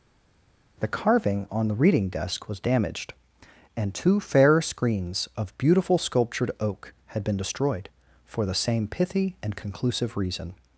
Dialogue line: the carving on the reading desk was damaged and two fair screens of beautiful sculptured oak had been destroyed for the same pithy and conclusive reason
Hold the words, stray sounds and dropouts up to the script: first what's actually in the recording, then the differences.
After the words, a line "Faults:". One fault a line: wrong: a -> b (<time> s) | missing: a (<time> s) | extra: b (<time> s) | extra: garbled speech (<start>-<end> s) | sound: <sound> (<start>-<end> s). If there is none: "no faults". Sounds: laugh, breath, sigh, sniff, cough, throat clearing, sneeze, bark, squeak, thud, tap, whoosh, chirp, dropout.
the carving on the reading desk was damaged and two fair screens of beautiful sculptured oak had been destroyed for the same pithy and conclusive reason
Faults:
no faults